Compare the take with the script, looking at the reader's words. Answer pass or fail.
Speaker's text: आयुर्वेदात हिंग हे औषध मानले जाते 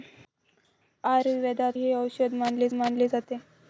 fail